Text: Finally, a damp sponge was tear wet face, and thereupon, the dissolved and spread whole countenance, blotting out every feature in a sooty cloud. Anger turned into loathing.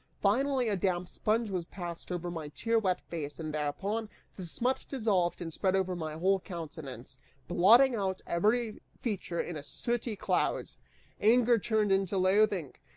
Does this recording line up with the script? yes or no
no